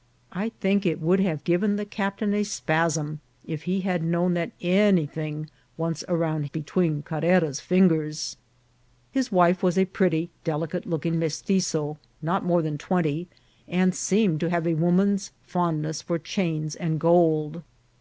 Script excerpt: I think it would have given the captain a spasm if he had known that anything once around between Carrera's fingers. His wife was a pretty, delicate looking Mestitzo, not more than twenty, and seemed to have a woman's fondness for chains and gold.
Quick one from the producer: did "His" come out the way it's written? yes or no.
yes